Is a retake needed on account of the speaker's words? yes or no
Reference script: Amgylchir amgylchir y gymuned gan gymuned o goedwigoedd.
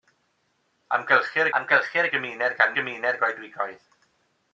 no